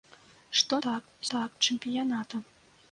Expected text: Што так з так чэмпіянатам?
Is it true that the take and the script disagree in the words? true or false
false